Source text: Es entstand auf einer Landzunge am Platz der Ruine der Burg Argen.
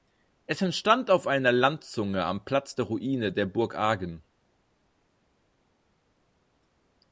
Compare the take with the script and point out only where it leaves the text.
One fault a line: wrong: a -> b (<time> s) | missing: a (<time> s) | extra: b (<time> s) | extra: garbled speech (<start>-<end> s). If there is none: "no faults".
no faults